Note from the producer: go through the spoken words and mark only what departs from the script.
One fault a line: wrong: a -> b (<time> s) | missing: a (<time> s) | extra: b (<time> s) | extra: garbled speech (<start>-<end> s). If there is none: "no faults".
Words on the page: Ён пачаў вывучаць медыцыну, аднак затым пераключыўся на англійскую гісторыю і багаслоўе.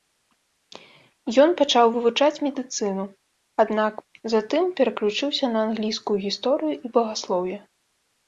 no faults